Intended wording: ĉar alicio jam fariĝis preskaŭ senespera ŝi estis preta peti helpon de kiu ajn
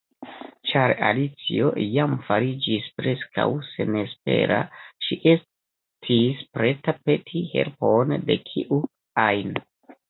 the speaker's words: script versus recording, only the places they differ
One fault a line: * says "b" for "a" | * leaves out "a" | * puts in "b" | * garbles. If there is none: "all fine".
all fine